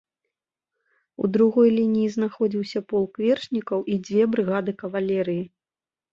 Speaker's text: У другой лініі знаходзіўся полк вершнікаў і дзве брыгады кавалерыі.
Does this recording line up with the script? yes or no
yes